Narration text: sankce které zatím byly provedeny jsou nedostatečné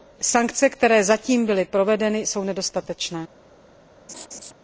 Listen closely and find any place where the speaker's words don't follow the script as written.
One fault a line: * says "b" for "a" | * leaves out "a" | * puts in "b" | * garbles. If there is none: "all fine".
all fine